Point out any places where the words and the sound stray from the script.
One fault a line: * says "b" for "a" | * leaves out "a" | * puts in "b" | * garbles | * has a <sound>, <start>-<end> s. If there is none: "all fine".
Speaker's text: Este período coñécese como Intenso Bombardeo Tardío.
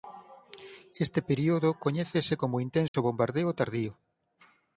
* has a dropout, 2.9-2.9 s